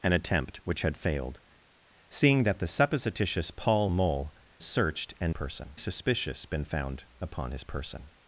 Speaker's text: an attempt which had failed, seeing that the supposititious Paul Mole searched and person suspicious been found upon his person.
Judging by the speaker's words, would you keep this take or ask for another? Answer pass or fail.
pass